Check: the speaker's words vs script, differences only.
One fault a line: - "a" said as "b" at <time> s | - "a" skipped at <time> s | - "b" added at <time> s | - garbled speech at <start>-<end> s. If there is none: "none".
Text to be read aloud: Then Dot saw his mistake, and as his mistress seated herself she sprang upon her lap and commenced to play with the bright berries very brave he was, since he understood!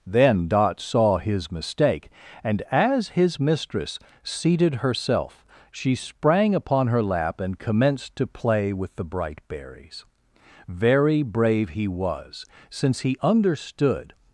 none